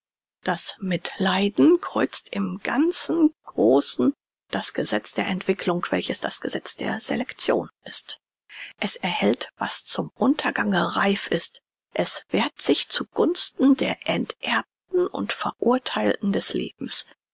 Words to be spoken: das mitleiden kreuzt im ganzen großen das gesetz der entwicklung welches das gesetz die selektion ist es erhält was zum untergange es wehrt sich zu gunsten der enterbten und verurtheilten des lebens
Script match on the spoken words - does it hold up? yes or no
no